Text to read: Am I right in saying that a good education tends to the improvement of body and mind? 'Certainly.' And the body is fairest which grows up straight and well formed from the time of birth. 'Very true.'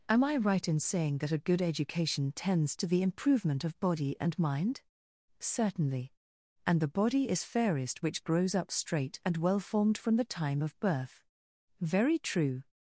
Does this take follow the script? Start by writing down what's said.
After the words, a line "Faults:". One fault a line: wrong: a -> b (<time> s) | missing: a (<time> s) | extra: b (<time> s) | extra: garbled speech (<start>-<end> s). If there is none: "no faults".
Am I right in saying that a good education tends to the improvement of body and mind? 'Certainly.' And the body is fairest which grows up straight and well formed from the time of birth. 'Very true.'
Faults:
no faults